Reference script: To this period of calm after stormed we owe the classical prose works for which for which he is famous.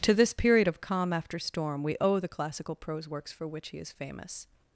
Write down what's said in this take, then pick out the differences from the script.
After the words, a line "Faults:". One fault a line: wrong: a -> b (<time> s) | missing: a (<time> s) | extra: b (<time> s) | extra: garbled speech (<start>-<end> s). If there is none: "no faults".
To this period of calm after storm we owe the classical prose works for which he is famous.
Faults:
wrong: stormed -> storm (1.4 s)
missing: for which (3.7 s)